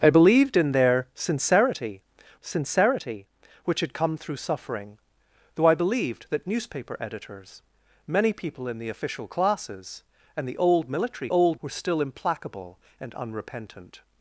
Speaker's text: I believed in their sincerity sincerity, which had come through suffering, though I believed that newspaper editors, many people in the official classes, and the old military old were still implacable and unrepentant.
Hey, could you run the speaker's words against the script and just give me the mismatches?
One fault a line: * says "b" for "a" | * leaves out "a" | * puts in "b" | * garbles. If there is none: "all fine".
all fine